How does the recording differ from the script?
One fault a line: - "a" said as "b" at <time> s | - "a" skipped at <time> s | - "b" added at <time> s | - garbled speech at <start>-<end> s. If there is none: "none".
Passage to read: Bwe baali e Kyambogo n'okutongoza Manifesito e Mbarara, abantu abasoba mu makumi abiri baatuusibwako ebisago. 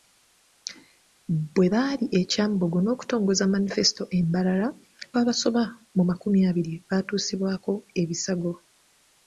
- "abantu" skipped at 4.7 s